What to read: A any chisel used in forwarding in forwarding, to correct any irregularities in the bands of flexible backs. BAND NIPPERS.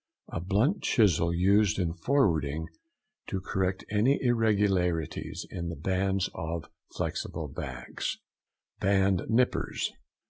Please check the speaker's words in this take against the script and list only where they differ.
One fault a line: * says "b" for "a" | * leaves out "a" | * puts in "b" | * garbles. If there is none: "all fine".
* says "blunt" for "any"
* leaves out "in forwarding"